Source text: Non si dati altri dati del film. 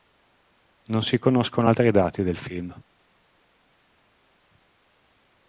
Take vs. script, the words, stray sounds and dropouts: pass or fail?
fail